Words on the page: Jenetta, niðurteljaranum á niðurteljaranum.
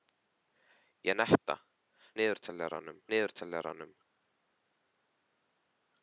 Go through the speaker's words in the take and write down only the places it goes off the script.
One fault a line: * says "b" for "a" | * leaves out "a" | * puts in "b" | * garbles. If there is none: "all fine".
all fine